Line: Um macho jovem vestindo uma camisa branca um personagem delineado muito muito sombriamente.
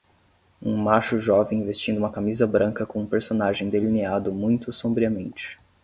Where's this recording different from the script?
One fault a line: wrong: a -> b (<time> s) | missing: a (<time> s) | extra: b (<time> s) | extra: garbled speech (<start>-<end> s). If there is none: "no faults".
extra: com (2.9 s)
missing: muito (4.7 s)